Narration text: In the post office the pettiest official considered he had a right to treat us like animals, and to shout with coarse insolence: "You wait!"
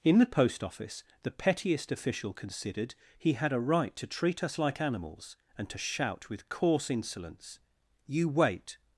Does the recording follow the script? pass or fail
pass